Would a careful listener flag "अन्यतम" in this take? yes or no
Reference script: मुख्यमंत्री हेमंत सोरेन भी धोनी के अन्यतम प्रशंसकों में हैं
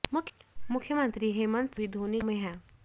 yes